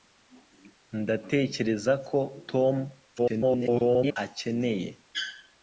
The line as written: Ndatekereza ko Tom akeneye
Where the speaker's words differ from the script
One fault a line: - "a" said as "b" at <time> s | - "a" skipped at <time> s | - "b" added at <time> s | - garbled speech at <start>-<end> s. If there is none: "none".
- garbled speech at 3.2-4.2 s